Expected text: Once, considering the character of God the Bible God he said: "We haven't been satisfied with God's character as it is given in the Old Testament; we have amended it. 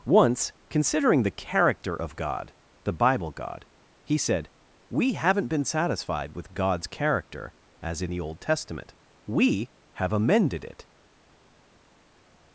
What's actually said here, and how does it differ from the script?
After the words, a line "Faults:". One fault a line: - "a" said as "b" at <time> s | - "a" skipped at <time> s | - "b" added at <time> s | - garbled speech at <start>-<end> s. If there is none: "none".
Once, considering the character of God the Bible God he said: "We haven't been satisfied with God's character as it the Old Testament; we have amended it.
Faults:
- "is given in" skipped at 8.1 s